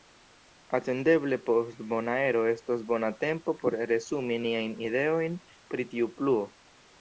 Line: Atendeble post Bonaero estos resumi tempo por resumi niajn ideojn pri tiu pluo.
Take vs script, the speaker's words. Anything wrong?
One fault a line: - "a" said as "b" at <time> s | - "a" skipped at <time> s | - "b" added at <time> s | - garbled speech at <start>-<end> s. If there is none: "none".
- "resumi" said as "bona" at 2.9 s